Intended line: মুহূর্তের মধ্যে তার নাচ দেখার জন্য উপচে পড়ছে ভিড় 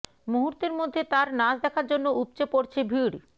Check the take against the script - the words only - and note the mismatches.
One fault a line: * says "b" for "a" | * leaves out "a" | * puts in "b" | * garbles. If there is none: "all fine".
all fine